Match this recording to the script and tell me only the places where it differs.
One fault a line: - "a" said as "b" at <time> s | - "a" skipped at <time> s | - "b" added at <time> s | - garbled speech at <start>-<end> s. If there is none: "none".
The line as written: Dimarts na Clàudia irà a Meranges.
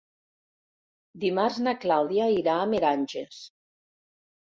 none